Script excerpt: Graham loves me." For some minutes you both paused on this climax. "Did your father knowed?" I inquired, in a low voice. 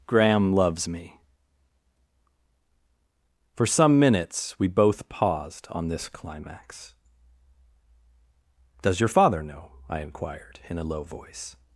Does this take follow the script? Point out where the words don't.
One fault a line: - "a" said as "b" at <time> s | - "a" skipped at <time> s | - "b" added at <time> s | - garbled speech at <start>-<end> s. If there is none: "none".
- "you" said as "we" at 4.6 s
- "Did" said as "Does" at 8.8 s
- "knowed" said as "know" at 9.4 s